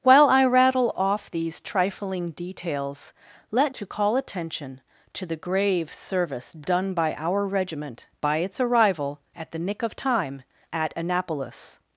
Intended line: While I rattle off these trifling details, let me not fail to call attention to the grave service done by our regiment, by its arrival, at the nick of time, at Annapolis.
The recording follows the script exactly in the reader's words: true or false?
false